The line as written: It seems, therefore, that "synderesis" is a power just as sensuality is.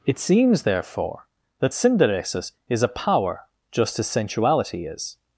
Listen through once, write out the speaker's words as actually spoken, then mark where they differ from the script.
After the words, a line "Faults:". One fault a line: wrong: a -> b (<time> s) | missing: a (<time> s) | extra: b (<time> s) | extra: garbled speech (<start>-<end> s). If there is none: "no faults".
It seems, therefore, that "synderesis" is a power just as sensuality is.
Faults:
no faults